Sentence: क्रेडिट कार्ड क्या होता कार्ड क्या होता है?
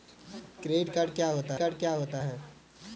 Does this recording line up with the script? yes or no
yes